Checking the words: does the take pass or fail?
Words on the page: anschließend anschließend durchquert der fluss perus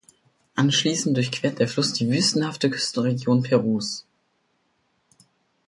fail